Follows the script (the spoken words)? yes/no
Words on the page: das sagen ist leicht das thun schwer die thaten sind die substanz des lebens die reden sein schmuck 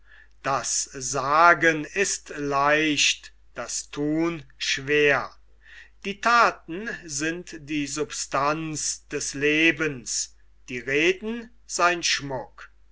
yes